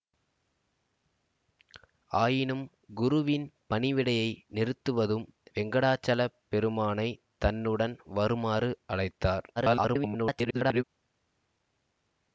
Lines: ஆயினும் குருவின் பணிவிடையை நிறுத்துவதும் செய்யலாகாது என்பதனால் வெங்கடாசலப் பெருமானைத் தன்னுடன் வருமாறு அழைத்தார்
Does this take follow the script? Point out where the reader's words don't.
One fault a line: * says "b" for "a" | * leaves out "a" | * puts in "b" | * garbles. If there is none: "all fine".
* leaves out "செய்யலாகாது என்பதனால்"
* garbles